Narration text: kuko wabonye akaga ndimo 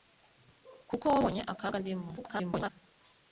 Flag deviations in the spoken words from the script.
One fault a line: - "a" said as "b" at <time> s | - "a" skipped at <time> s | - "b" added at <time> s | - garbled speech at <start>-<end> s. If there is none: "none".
- garbled speech at 2.2-2.7 s